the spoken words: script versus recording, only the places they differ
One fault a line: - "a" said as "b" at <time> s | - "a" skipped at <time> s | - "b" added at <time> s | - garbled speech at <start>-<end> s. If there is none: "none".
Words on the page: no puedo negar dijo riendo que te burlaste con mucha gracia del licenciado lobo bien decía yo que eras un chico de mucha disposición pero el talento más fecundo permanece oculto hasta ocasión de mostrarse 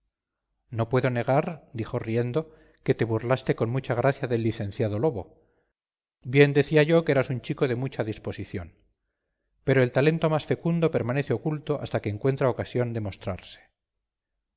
- "que encuentra" added at 12.0 s